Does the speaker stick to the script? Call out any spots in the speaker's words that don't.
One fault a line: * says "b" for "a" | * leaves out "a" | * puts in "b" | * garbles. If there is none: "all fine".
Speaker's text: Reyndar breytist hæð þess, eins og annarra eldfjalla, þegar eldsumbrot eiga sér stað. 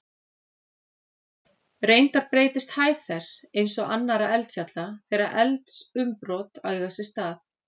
all fine